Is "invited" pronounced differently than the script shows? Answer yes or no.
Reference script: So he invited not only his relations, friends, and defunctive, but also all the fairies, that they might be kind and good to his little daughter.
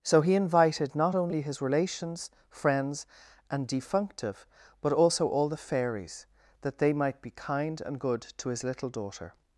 no